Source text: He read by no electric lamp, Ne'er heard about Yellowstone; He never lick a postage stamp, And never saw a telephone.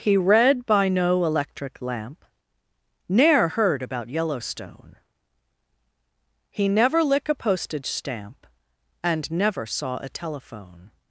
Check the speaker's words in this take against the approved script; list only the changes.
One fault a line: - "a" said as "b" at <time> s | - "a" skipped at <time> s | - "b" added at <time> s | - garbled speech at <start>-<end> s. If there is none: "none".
none